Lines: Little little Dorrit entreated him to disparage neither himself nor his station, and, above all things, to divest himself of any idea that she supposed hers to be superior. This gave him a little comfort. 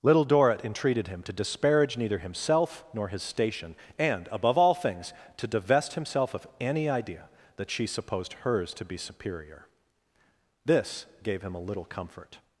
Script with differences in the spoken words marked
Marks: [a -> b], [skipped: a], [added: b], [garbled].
Little [skipped: little] Dorrit entreated him to disparage neither himself nor his station, and, above all things, to divest himself of any idea that she supposed hers to be superior. This gave him a little comfort.